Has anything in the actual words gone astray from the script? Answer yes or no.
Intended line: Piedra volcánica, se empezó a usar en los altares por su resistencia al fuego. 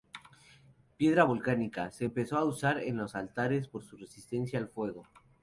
no